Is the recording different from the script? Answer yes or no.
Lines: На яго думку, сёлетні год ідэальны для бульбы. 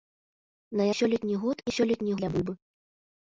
yes